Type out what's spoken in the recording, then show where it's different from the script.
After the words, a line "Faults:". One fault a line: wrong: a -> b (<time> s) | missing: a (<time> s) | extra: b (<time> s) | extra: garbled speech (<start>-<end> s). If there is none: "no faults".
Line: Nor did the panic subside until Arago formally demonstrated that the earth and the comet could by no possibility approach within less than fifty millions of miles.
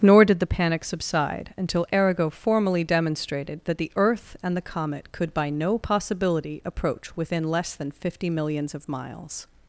Nor did the panic subside until Arago formally demonstrated that the earth and the comet could by no possibility approach within less than fifty millions of miles.
Faults:
no faults